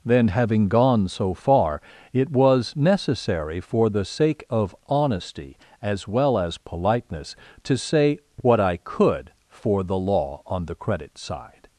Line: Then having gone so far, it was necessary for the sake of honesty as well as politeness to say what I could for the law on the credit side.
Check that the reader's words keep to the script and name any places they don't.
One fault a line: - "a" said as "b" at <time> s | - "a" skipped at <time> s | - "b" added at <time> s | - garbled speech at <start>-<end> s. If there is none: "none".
none